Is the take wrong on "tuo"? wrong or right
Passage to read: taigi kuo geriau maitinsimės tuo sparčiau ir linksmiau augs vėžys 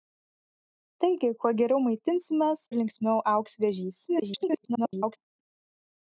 wrong